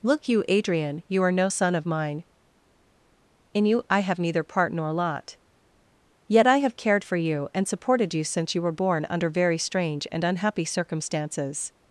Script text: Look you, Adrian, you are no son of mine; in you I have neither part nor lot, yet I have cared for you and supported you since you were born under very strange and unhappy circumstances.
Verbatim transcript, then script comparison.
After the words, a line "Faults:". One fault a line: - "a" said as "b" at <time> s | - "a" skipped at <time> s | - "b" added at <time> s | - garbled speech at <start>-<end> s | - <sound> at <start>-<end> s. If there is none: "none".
Look you, Adrian, you are no son of mine; in you I have neither part nor lot, yet I have cared for you and supported you since you were born under very strange and unhappy circumstances.
Faults:
none